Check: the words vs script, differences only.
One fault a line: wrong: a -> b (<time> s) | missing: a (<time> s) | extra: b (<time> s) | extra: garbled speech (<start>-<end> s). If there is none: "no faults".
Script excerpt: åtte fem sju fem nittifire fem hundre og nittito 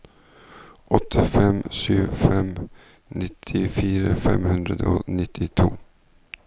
no faults